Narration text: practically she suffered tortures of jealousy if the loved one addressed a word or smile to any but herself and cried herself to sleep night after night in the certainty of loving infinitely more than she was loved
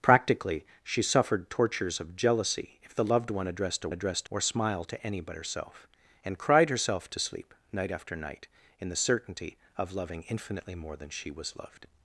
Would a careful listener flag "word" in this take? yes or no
yes